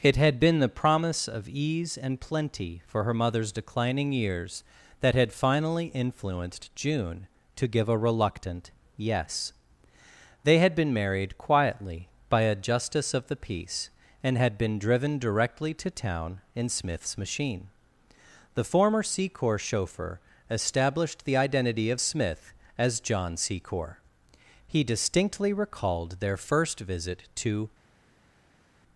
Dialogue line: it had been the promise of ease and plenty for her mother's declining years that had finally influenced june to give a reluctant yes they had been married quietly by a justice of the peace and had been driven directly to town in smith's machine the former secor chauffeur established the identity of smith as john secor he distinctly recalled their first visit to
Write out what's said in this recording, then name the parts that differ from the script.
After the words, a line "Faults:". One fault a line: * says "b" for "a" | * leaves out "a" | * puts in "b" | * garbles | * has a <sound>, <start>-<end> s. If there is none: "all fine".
it had been the promise of ease and plenty for her mother's declining years that had finally influenced june to give a reluctant yes they had been married quietly by a justice of the peace and had been driven directly to town in smith's machine the former secor chauffeur established the identity of smith as john secor he distinctly recalled their first visit to
Faults:
all fine